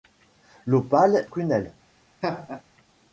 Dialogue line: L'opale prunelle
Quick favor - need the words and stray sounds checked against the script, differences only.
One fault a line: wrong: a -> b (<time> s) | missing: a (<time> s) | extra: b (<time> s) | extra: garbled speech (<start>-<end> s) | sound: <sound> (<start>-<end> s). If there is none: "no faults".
sound: laugh (2.2-2.6 s)